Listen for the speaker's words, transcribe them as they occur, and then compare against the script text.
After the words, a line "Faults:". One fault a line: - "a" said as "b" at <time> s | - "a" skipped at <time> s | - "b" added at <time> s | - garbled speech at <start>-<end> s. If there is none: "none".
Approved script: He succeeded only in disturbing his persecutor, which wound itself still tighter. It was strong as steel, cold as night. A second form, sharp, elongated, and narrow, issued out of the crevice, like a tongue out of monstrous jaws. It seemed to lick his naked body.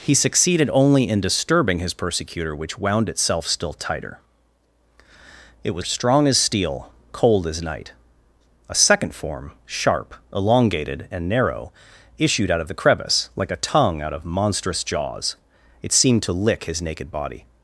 He succeeded only in disturbing his persecutor, which wound itself still tighter. It was strong as steel, cold as night. A second form, sharp, elongated, and narrow, issued out of the crevice, like a tongue out of monstrous jaws. It seemed to lick his naked body.
Faults:
none